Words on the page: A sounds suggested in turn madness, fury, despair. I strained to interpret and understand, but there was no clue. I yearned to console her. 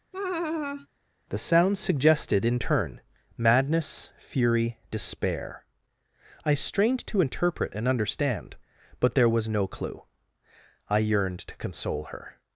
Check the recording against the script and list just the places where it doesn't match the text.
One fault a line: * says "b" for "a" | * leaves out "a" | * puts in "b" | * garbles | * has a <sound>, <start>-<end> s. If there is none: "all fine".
* has a laugh, 0.1-0.9 s
* says "The" for "A"